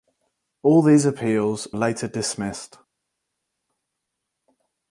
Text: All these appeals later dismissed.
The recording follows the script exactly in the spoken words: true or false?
true